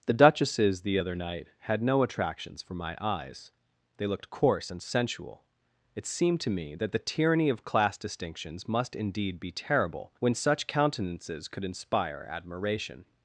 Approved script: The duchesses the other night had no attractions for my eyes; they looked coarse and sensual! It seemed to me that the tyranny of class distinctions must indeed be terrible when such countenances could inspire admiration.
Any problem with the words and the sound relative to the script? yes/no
no